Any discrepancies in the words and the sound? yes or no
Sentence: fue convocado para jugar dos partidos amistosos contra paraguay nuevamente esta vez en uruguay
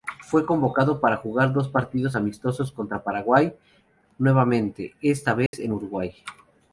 yes